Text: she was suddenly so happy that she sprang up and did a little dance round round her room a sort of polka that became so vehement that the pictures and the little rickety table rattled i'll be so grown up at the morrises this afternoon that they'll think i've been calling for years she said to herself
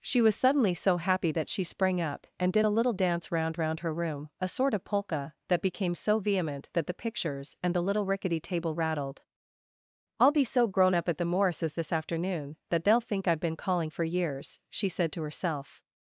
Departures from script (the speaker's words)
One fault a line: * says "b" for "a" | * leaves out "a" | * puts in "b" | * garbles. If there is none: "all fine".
all fine